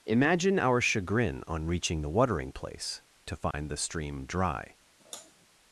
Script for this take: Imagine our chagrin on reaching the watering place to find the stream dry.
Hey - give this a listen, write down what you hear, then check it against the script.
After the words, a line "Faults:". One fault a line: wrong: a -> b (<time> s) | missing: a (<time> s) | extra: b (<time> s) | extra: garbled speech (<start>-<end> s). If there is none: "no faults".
Imagine our chagrin on reaching the watering place to find the stream dry.
Faults:
no faults